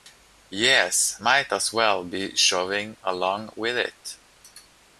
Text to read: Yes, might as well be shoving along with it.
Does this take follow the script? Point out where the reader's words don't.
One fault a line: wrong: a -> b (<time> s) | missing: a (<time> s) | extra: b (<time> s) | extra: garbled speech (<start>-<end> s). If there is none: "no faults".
no faults